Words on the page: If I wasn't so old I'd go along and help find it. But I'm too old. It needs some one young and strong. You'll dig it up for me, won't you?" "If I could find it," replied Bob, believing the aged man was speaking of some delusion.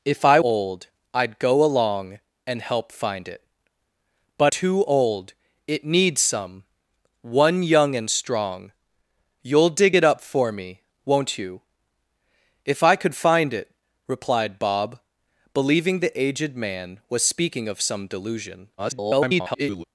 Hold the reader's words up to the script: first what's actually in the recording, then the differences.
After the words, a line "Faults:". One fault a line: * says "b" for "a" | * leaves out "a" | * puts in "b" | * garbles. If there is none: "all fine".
If I old I'd go along and help find it. But Too old. It needs some one young and strong. You'll dig it up for me, won't you?" "If I could find it," replied Bob, believing the aged man was speaking of some delusion. [garbled]
Faults:
* leaves out "wasn't so"
* leaves out "I'm"
* garbles